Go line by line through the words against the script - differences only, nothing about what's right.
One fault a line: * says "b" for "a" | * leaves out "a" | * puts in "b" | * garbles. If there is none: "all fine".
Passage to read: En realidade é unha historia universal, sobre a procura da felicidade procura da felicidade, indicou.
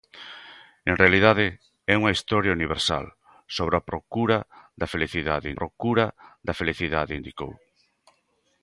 all fine